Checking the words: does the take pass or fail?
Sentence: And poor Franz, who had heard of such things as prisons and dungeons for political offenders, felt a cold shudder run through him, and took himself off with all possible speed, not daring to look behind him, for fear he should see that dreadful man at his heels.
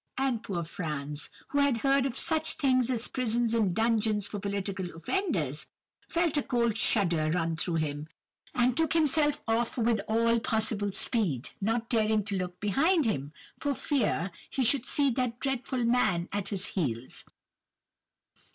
pass